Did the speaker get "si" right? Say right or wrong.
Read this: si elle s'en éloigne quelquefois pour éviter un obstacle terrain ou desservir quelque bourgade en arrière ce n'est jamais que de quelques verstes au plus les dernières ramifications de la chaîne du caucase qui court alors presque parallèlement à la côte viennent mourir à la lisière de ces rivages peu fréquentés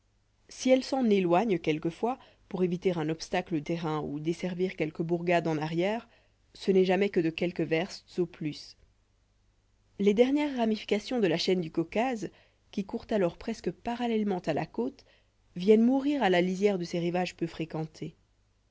right